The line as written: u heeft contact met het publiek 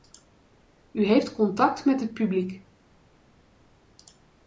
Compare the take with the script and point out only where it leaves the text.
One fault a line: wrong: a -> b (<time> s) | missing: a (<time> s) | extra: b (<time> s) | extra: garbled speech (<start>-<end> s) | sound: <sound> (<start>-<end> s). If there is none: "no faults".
no faults